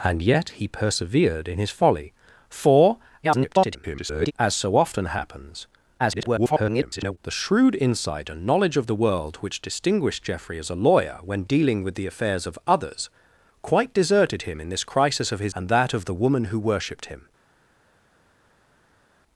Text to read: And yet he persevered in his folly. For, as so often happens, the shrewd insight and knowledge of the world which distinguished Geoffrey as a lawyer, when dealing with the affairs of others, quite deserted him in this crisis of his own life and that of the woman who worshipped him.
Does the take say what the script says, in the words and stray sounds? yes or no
no